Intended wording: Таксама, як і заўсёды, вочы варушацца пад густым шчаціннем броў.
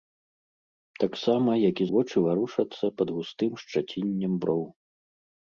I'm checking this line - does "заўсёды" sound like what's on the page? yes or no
no